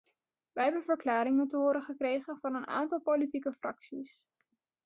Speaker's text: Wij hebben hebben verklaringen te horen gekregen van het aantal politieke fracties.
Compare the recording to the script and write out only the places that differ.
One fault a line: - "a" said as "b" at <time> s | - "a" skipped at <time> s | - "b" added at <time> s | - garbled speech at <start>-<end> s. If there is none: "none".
- "hebben" skipped at 0.8 s
- "het" said as "een" at 2.5 s